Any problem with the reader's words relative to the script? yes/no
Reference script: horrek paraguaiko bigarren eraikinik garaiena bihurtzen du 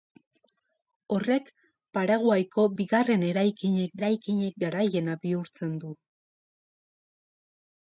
yes